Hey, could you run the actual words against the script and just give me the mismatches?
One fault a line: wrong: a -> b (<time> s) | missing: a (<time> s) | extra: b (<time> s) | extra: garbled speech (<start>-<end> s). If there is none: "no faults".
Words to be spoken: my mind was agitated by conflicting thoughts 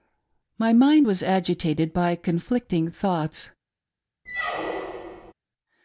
no faults